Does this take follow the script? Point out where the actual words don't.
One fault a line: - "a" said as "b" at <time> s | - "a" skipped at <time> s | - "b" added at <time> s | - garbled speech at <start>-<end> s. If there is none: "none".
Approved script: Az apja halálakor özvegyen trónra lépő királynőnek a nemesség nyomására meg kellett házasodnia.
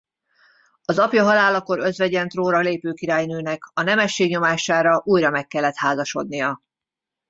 - "újra" added at 5.0 s